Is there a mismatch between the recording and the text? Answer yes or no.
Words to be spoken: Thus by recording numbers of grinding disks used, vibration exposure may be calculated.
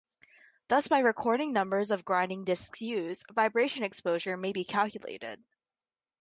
no